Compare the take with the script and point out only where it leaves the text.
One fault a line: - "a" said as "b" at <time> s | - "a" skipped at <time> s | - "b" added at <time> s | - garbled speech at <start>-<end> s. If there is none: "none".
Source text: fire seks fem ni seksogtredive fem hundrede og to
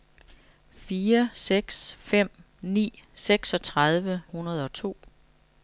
- "fem" skipped at 4.2 s